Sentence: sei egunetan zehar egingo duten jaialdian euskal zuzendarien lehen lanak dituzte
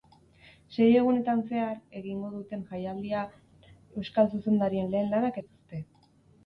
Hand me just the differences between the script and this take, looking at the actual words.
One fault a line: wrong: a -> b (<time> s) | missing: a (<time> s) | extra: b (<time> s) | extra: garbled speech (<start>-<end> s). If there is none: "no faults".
no faults